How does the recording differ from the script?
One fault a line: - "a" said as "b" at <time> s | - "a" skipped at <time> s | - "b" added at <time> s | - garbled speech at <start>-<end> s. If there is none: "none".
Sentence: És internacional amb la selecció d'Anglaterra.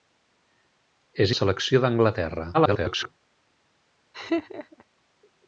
- "internacional amb" skipped at 1.3 s
- garbled speech at 2.5-3.1 s